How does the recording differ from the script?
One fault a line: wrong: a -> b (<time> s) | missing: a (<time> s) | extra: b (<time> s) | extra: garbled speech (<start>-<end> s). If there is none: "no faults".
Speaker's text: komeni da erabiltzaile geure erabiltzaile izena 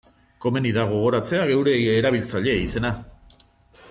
wrong: erabiltzaile -> gogoratzea (0.9 s)